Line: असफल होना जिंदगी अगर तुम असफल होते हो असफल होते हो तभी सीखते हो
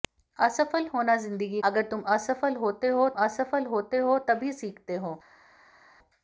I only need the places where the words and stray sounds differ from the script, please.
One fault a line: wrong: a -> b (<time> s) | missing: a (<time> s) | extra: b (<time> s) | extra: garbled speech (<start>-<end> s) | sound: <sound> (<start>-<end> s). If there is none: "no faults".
no faults